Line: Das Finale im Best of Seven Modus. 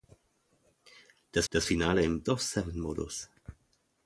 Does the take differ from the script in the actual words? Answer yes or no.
yes